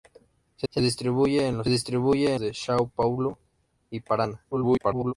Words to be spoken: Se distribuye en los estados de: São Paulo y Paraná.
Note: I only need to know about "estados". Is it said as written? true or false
false